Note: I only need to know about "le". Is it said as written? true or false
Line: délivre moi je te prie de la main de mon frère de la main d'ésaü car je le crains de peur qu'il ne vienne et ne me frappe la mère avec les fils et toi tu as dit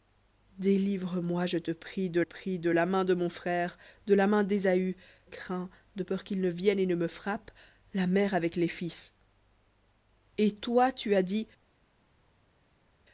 false